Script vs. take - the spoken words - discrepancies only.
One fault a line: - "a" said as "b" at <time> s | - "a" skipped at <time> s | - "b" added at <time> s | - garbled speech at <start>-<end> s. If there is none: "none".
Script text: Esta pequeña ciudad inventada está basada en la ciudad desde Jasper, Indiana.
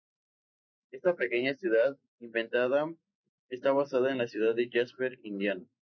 - "desde" said as "de" at 4.5 s